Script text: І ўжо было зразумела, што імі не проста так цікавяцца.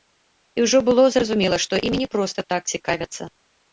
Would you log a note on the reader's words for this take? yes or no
no